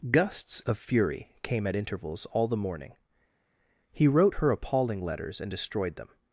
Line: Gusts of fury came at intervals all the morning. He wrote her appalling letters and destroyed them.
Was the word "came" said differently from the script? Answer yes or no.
no